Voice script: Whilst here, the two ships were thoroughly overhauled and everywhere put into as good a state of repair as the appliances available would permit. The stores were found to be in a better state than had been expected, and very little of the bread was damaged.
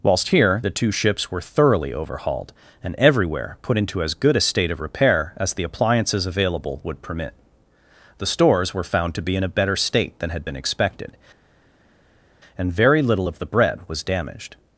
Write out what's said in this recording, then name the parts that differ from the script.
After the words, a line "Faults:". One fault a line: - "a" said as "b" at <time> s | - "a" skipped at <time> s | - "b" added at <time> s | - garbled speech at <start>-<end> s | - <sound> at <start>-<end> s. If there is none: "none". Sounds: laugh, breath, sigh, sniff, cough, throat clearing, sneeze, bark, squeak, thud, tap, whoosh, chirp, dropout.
Whilst here, the two ships were thoroughly overhauled and everywhere put into as good a state of repair as the appliances available would permit. The stores were found to be in a better state than had been expected, and very little of the bread was damaged.
Faults:
none